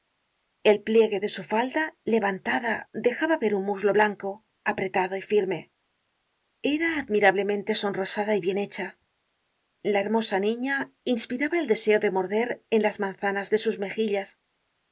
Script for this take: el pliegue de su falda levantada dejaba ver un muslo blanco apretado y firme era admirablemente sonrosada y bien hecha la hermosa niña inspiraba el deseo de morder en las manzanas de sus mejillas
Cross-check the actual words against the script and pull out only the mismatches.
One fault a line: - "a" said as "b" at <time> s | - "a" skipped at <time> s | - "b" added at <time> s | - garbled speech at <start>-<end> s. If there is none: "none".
none